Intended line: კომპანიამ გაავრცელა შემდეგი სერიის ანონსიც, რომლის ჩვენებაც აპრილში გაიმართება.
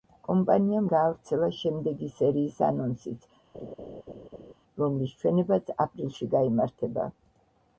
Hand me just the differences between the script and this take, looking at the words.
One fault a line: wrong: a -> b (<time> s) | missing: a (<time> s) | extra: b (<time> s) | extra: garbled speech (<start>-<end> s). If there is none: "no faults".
no faults